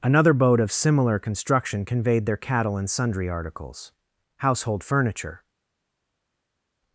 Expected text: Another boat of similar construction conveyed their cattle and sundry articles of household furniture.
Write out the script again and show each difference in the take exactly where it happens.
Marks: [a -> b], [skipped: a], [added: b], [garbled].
Another boat of similar construction conveyed their cattle and sundry articles [skipped: of] household furniture.